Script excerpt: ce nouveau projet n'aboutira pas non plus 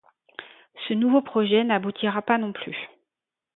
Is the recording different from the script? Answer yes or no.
no